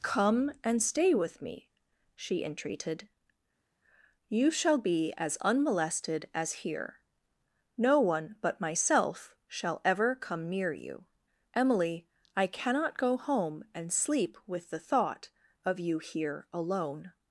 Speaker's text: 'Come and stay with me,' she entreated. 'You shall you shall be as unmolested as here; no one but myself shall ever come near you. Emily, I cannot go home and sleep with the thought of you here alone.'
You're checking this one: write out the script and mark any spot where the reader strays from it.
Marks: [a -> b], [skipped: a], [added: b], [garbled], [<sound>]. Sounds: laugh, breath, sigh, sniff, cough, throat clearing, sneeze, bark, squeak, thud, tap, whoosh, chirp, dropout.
'Come and stay with me,' she entreated. 'You shall [skipped: you shall] be as unmolested as here; no one but myself shall ever come near you. Emily, I cannot go home and sleep with the thought of you here alone.'